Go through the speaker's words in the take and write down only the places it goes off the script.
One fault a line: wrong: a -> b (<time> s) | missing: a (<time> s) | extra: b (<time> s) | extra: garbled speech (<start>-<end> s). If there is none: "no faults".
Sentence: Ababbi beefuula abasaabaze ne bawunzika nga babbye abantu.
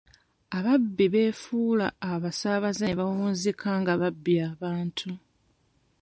no faults